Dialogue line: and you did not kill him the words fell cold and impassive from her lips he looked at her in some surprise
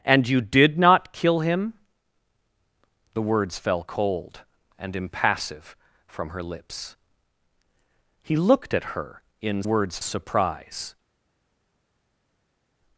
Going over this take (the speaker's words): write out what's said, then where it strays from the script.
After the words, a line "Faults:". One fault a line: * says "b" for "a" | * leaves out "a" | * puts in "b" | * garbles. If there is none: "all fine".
and you did not kill him the words fell cold and impassive from her lips he looked at her in words surprise
Faults:
* says "words" for "some"